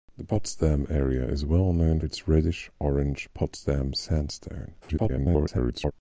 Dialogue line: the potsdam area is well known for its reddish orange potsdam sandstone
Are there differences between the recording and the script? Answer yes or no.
yes